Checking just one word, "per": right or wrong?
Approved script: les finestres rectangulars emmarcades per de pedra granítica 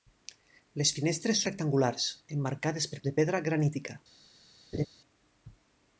right